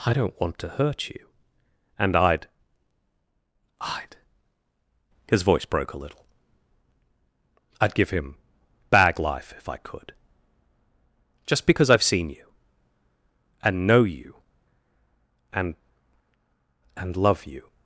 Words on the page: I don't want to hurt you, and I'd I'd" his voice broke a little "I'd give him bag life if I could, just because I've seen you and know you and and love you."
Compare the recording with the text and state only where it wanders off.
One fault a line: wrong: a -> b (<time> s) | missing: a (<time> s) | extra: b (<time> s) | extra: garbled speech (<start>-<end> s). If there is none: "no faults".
no faults